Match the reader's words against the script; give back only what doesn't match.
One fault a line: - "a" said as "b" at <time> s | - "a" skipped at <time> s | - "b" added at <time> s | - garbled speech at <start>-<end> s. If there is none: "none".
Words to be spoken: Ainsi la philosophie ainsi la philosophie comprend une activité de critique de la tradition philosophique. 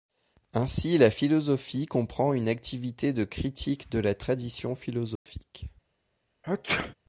- "ainsi la philosophie" skipped at 1.8 s